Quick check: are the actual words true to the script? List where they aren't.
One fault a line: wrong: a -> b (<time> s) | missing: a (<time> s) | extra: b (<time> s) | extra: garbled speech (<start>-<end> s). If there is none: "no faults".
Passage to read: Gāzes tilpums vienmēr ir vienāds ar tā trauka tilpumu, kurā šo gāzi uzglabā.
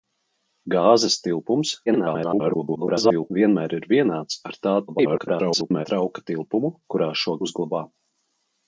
extra: garbled speech (1.9-3.3 s)
extra: garbled speech (4.9-5.9 s)
missing: gāzi (7.3 s)